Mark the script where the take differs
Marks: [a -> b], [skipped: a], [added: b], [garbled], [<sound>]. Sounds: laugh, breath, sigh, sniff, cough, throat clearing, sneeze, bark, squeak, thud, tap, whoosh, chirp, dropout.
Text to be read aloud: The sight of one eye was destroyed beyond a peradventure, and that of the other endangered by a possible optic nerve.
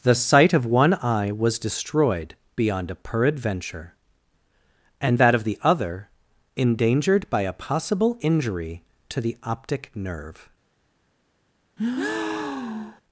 The sight of one eye was destroyed beyond a peradventure, and that of the other endangered by a possible [added: injury to the] optic nerve. [breath]